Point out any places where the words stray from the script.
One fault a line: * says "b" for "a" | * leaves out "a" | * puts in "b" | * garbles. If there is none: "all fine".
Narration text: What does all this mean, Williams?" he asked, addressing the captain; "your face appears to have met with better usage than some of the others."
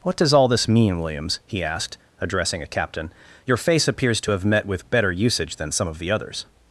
* says "a" for "the"